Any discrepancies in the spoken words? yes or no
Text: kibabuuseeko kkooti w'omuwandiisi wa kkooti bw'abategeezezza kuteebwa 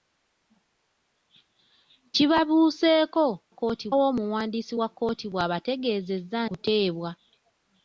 no